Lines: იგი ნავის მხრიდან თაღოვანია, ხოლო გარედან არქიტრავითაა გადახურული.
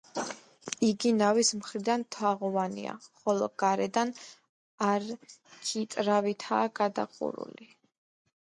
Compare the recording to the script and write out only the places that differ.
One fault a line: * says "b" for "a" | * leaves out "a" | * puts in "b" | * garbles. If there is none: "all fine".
all fine